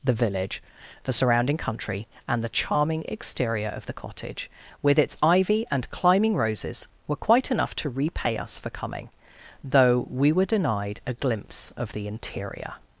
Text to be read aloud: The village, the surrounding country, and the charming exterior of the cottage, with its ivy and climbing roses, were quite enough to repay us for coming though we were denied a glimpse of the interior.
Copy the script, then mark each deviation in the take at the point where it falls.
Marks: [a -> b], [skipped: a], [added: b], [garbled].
The village, the surrounding country, and the charming exterior of the cottage, with its ivy and climbing roses, were quite enough to repay us for coming though we were denied a glimpse of the interior.